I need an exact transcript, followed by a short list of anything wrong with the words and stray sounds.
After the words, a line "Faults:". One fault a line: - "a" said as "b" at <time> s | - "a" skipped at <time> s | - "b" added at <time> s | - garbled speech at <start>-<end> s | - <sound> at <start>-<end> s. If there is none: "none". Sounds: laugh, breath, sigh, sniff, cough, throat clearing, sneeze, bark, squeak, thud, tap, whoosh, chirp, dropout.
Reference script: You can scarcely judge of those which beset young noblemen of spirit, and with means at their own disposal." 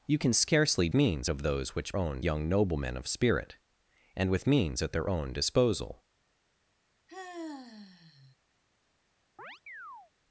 You can scarcely means of those which own young noblemen of spirit, and with means at their own disposal."
Faults:
- "judge" said as "means" at 0.9 s
- "beset" said as "own" at 2.0 s
- sigh at 7.1-8.3 s
- chirp at 9.4-10.1 s